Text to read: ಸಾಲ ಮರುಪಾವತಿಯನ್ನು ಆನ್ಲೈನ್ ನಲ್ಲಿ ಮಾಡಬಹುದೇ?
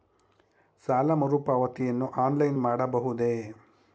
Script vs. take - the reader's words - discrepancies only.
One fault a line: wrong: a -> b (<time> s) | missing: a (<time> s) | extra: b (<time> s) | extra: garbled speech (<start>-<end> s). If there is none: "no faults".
missing: ನಲ್ಲಿ (2.6 s)